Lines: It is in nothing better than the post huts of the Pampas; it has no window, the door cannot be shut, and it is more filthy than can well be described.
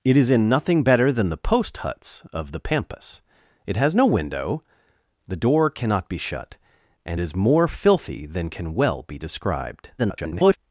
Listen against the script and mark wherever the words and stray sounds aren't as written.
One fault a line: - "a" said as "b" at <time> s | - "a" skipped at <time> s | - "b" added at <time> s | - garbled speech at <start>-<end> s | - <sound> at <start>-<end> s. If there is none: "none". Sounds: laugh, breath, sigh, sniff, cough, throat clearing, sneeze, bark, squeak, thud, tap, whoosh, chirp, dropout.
- "it" skipped at 7.2 s
- garbled speech at 10.0-10.6 s